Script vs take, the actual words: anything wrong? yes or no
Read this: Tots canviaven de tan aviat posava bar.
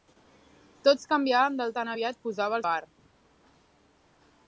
no